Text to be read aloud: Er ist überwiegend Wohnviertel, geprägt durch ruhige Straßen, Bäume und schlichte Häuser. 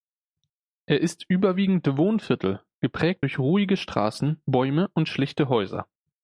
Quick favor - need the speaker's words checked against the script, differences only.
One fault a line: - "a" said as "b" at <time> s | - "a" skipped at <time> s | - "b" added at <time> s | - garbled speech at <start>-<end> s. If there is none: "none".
none